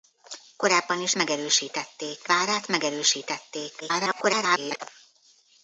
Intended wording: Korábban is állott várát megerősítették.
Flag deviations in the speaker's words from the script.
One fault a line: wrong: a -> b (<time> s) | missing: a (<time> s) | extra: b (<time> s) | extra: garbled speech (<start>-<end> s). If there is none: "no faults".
wrong: állott -> megerősítették (1.1 s)
extra: garbled speech (3.8-4.8 s)